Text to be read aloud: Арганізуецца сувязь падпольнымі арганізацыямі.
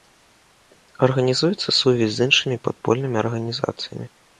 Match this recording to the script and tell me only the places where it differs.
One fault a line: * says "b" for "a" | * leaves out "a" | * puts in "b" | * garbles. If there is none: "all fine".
* puts in "з іншымі"